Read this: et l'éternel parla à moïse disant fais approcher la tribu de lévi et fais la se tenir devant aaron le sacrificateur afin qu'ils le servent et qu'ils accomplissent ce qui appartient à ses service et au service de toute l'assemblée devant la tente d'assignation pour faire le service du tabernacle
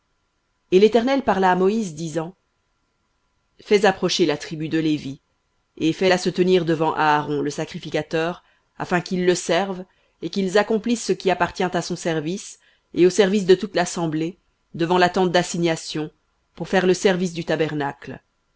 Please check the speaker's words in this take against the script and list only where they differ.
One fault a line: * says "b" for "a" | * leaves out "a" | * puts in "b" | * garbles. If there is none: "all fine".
* says "son" for "ses"